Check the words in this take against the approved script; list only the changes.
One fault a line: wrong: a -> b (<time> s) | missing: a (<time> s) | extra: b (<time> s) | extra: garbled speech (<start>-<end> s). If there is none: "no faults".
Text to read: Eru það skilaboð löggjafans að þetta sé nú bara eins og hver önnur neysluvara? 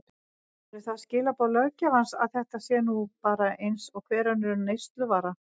no faults